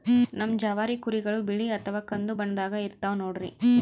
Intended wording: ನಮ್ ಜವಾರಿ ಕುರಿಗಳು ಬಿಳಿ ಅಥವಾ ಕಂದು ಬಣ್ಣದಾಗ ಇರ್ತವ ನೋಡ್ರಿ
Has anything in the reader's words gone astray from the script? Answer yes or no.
no